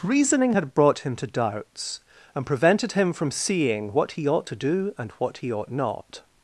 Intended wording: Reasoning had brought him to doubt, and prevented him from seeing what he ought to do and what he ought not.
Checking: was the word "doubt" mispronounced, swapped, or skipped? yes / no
yes